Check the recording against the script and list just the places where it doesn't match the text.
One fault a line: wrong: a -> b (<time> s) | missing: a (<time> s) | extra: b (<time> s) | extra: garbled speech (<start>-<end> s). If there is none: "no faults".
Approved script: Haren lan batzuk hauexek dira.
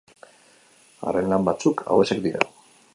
no faults